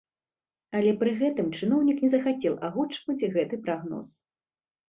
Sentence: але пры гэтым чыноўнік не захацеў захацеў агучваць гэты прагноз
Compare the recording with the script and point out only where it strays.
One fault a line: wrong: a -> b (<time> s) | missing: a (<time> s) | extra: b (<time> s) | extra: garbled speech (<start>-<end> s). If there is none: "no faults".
missing: захацеў (2.6 s)